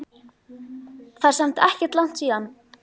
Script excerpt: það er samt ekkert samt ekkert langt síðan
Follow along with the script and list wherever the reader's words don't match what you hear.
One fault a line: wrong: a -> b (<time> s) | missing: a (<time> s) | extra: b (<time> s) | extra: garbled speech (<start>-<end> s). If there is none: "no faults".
missing: samt ekkert (2.0 s)